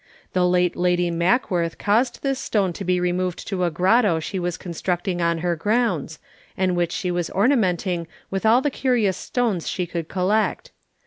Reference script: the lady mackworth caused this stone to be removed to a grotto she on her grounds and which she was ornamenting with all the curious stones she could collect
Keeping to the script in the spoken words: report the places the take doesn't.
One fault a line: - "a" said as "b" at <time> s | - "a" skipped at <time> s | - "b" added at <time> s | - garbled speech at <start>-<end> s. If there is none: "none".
- "late" added at 0.5 s
- "was constructing" added at 4.4 s